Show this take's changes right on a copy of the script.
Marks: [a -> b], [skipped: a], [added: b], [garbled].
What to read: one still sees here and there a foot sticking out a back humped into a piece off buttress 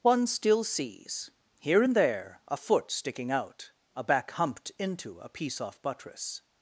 one still sees here and there a foot sticking out a back humped into a piece off buttress